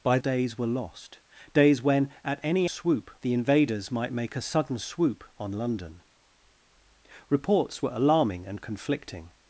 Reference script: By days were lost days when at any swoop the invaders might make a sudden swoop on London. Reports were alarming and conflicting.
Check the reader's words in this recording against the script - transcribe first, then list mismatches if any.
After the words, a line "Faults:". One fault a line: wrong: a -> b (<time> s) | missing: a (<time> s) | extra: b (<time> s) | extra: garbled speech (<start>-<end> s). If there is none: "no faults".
By days were lost days when at any swoop the invaders might make a sudden swoop on London. Reports were alarming and conflicting.
Faults:
no faults